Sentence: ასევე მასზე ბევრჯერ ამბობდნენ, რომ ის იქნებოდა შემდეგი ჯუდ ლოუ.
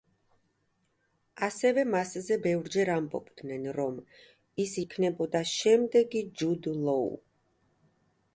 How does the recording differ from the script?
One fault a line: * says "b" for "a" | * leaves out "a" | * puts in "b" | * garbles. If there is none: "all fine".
all fine